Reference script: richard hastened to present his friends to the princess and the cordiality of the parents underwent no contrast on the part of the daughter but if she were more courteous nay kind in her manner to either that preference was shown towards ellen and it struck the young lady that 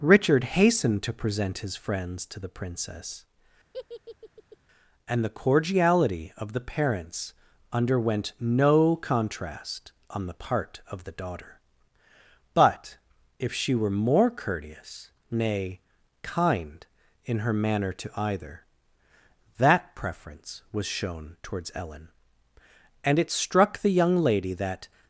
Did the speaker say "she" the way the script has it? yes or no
yes